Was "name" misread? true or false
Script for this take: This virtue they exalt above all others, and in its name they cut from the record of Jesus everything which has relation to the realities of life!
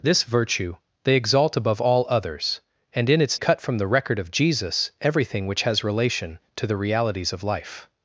true